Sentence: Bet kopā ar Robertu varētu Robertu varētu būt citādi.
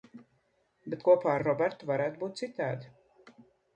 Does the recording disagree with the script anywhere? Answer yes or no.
yes